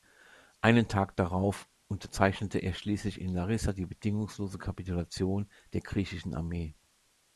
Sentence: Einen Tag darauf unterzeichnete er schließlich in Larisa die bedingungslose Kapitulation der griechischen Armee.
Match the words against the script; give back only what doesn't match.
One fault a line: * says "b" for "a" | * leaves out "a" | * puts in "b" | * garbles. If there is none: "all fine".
all fine